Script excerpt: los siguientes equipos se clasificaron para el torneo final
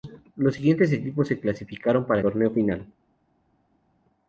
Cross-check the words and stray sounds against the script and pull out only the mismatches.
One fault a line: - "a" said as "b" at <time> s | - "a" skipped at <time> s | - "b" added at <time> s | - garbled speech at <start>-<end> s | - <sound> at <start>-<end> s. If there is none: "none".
- "el" skipped at 2.2 s